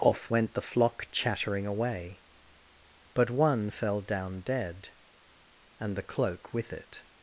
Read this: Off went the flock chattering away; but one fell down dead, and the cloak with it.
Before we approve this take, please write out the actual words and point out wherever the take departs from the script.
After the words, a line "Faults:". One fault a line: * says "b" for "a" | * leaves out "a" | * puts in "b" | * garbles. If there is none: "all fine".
Off went the flock chattering away; but one fell down dead, and the cloak with it.
Faults:
all fine